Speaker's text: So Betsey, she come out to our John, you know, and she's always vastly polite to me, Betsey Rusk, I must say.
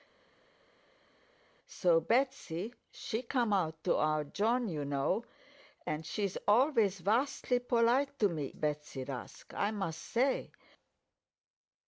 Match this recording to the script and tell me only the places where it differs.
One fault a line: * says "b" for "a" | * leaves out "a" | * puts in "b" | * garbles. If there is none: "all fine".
all fine